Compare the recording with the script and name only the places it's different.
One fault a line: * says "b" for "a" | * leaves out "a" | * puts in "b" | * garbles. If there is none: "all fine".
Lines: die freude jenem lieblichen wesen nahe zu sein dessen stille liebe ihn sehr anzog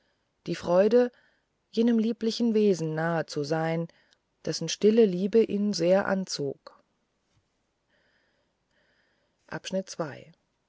all fine